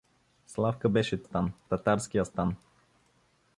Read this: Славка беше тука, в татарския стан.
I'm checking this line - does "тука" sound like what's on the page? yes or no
no